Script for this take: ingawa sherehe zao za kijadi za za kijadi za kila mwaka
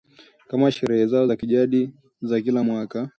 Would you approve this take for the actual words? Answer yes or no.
no